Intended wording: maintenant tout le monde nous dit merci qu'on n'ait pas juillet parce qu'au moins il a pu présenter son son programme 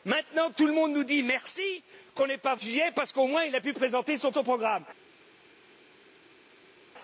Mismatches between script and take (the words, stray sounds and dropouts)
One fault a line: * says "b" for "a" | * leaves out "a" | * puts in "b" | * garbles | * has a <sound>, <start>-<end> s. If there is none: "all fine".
all fine